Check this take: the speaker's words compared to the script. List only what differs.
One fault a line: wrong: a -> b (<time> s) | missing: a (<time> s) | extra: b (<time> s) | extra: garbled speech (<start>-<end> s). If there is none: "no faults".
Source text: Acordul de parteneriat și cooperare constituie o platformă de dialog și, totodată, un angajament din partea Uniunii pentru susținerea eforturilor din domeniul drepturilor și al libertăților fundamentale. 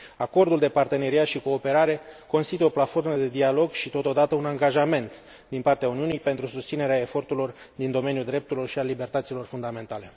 no faults